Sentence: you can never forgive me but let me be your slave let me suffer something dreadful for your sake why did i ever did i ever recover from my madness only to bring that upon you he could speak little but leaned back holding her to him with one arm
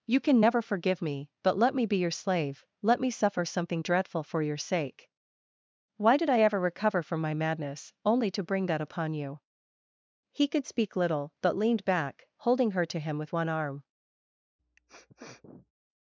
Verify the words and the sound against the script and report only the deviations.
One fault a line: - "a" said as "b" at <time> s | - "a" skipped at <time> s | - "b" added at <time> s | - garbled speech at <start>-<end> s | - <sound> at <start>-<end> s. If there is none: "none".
- "did i ever" skipped at 6.6 s
- sniff at 14.6-15.7 s